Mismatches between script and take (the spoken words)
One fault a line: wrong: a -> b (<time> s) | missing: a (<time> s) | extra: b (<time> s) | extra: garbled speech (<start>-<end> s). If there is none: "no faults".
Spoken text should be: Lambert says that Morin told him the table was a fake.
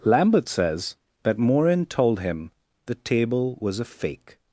no faults